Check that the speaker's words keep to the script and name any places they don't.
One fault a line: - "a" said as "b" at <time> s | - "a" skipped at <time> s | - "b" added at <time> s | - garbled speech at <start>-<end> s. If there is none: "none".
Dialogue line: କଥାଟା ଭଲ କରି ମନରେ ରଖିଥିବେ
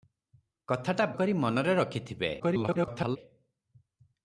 - "ଭଲ" skipped at 1.1 s
- garbled speech at 2.4-3.2 s